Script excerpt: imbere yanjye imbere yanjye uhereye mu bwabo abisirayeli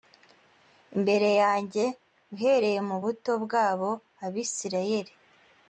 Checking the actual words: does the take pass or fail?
fail